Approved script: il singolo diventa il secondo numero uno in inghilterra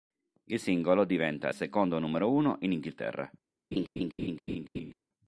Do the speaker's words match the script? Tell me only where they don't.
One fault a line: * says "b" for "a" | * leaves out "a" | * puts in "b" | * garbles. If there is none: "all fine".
all fine